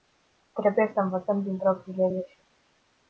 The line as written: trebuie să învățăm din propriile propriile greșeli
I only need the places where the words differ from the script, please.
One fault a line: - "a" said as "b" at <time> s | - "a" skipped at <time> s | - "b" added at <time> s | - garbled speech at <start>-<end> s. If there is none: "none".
- "propriile" skipped at 2.1 s